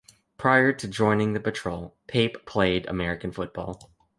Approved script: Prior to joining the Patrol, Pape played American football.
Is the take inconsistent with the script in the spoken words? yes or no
no